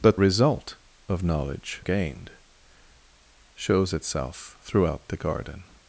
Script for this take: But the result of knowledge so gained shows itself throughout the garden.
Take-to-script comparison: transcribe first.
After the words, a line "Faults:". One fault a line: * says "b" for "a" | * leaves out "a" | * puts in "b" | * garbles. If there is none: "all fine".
But result of knowledge gained shows itself throughout the garden.
Faults:
* leaves out "the"
* leaves out "so"